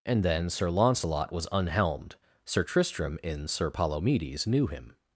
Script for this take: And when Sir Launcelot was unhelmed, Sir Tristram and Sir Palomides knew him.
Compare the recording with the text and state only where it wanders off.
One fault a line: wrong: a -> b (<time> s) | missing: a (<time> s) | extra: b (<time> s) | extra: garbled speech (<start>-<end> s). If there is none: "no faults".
wrong: when -> then (0.2 s)
wrong: and -> in (3.2 s)